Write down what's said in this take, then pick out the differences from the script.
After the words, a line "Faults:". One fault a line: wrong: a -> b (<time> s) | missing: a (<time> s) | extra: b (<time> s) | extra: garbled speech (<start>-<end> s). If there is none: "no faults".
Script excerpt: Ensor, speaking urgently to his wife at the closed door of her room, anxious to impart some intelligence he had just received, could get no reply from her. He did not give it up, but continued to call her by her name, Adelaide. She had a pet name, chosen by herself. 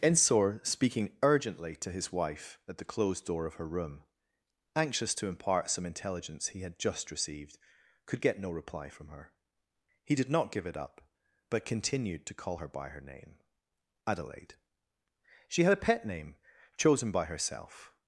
Ensor, speaking urgently to his wife at the closed door of her room, anxious to impart some intelligence he had just received, could get no reply from her. He did not give it up, but continued to call her by her name, Adelaide. She had a pet name, chosen by herself.
Faults:
no faults